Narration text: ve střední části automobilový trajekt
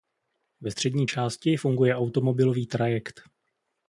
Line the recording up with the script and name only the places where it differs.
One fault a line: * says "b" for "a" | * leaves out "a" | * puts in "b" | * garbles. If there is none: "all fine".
* puts in "funguje"